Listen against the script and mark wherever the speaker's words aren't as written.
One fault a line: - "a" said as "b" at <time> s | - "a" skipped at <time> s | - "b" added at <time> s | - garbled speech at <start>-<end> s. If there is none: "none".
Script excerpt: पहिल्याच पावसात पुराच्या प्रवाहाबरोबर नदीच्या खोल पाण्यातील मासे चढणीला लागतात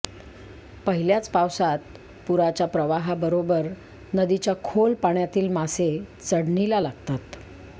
none